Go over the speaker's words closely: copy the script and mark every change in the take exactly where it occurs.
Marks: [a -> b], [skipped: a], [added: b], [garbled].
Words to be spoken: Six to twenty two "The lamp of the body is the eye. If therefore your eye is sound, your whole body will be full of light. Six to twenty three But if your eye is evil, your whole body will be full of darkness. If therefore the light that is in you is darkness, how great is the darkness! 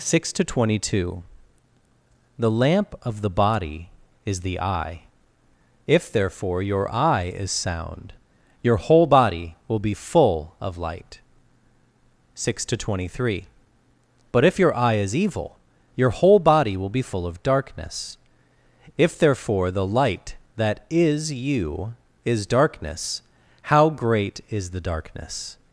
Six to twenty two "The lamp of the body is the eye. If therefore your eye is sound, your whole body will be full of light. Six to twenty three But if your eye is evil, your whole body will be full of darkness. If therefore the light that is [skipped: in] you is darkness, how great is the darkness!